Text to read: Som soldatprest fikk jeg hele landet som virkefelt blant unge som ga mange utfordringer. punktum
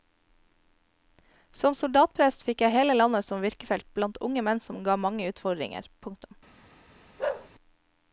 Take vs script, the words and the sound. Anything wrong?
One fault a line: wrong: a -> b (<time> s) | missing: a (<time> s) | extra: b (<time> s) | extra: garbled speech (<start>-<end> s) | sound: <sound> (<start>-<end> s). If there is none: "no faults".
extra: menn (4.5 s)
sound: bark (7.2-7.5 s)